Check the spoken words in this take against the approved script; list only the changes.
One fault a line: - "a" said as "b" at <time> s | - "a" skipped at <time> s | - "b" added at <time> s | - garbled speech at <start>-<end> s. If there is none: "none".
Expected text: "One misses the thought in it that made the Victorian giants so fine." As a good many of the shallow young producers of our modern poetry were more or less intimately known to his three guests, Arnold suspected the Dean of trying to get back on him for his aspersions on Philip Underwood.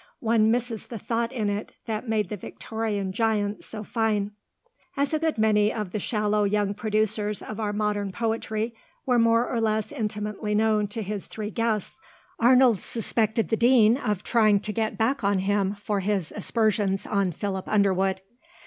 none